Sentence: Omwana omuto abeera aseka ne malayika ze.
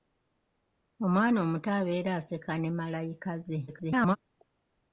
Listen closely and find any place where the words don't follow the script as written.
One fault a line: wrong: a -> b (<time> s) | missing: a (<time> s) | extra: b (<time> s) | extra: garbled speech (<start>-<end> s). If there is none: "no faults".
extra: garbled speech (3.7-4.2 s)